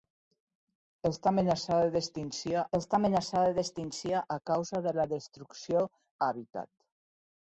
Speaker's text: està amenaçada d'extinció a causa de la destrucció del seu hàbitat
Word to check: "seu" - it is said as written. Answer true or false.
false